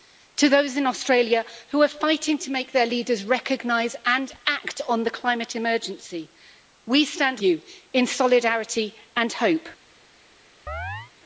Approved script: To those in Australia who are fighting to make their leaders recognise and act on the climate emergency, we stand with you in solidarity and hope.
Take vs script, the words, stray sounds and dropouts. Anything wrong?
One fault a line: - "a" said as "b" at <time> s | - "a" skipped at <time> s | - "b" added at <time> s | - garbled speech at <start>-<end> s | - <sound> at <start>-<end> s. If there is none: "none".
- "with" skipped at 7.4 s
- chirp at 10.7-11.1 s